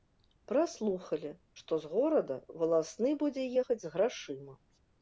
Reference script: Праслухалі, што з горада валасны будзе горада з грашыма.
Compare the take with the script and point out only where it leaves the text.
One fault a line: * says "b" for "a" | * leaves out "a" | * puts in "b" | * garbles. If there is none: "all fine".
* says "ехаць" for "горада"